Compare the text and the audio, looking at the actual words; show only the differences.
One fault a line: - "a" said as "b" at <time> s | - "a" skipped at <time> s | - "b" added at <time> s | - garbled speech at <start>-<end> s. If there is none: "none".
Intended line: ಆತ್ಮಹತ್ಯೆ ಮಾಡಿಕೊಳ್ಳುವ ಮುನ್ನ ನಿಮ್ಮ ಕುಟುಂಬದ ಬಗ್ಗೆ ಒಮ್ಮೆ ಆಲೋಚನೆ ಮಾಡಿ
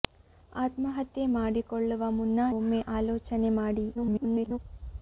- "ನಿಮ್ಮ ಕುಟುಂಬದ ಬಗ್ಗೆ" skipped at 2.5 s
- garbled speech at 3.9-4.6 s